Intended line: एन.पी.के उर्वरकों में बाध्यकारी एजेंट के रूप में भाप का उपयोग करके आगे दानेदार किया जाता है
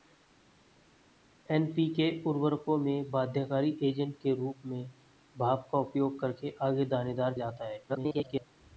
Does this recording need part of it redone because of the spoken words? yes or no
yes